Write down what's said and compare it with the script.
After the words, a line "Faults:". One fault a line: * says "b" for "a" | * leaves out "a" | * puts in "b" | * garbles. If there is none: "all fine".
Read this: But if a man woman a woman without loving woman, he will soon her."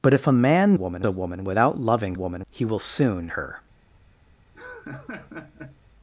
But if a man woman a woman without loving woman, he will soon her."
Faults:
all fine